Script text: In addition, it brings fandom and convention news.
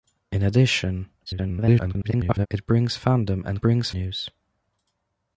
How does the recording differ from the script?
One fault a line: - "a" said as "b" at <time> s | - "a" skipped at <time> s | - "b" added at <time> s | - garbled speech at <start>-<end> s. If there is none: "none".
- garbled speech at 1.3-2.5 s
- "convention" said as "brings" at 3.6 s